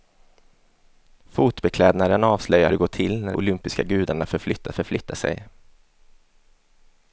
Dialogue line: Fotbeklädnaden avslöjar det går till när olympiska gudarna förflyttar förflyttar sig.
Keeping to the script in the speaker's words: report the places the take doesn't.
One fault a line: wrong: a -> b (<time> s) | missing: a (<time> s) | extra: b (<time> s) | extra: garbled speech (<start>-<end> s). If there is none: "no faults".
no faults